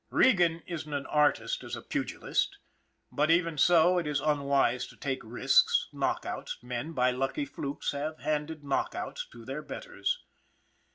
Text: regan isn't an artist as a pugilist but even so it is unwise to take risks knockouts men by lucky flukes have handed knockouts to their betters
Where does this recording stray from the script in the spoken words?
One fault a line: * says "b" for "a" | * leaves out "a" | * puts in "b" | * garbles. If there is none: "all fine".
all fine